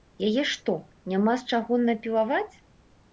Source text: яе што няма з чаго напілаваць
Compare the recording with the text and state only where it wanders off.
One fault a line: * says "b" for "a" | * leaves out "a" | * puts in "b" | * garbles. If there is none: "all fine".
all fine